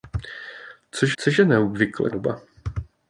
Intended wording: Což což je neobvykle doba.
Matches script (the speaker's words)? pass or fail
pass